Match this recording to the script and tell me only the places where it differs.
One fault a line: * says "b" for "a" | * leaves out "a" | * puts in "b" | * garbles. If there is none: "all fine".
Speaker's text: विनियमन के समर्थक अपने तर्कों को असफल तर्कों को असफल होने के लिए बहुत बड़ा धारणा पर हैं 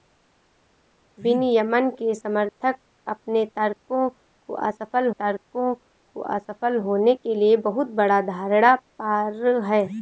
all fine